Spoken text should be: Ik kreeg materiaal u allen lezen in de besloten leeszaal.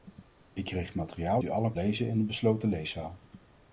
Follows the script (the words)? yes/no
yes